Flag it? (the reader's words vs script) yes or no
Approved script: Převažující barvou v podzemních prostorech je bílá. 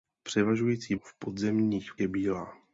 yes